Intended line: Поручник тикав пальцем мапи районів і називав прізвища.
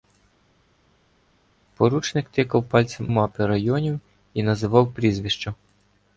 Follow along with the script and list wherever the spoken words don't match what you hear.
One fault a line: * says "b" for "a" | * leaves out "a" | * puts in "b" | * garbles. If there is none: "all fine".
all fine